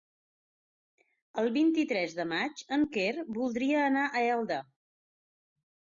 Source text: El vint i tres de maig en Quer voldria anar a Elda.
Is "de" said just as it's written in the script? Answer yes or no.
yes